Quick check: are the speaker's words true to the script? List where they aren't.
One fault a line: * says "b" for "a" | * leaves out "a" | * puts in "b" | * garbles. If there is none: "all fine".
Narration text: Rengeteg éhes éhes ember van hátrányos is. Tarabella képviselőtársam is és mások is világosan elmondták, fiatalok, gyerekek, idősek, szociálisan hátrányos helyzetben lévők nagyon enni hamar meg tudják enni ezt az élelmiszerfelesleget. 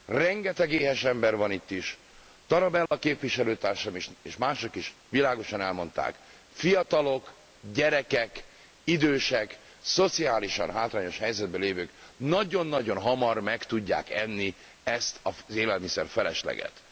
* leaves out "éhes"
* says "itt" for "hátrányos"
* says "nagyon" for "enni"